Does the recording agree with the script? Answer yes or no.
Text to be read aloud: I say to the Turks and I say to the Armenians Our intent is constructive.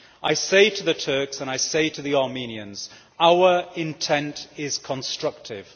yes